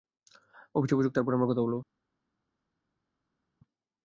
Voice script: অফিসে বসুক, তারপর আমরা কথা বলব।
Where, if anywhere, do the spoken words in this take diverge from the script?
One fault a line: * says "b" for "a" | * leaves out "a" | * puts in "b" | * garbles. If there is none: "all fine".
all fine